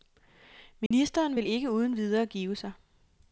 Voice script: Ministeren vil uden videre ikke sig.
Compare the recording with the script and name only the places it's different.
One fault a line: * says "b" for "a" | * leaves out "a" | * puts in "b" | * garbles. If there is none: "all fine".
* puts in "ikke"
* says "give" for "ikke"